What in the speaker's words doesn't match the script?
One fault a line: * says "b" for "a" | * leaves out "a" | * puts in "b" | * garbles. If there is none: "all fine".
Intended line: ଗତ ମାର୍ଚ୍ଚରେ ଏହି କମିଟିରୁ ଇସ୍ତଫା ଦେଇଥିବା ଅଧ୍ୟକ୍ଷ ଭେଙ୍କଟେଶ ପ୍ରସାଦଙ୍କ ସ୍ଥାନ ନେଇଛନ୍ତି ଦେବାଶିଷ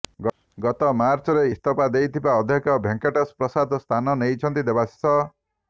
* leaves out "ଏହି କମିଟିରୁ"